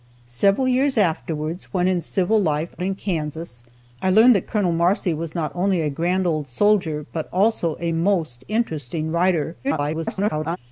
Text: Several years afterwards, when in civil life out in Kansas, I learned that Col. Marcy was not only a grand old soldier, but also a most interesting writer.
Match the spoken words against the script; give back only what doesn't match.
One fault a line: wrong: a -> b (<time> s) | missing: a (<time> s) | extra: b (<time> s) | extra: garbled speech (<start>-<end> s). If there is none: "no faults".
missing: out (2.7 s)
extra: garbled speech (9.6-10.6 s)